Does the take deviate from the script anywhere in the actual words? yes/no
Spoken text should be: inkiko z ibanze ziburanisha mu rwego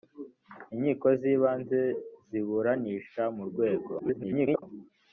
yes